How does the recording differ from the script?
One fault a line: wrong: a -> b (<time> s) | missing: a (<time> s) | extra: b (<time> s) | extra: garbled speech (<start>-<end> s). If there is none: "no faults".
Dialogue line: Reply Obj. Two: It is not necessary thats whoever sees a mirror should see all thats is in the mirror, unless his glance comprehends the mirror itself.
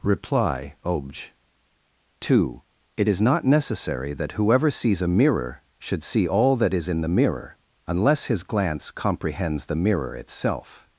wrong: thats -> that (4.1 s)
wrong: thats -> that (6.5 s)